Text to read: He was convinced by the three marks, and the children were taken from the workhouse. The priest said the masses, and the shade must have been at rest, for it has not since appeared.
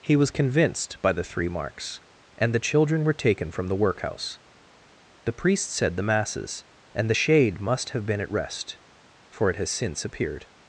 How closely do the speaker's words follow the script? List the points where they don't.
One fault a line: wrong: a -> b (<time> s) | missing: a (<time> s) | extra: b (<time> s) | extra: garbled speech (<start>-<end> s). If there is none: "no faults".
missing: not (9.7 s)